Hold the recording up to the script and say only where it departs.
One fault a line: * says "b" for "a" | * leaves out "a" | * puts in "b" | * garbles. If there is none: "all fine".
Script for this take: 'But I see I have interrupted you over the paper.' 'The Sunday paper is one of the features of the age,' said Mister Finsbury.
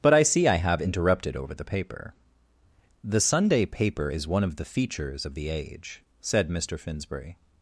* leaves out "you"